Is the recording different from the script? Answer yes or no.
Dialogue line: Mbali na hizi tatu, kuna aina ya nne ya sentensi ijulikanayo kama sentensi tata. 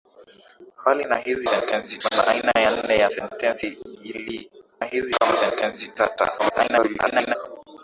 yes